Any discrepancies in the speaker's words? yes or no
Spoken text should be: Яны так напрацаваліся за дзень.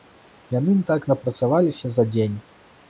no